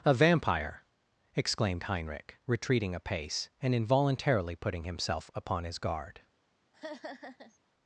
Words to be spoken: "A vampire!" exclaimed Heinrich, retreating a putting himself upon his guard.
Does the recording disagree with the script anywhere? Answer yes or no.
yes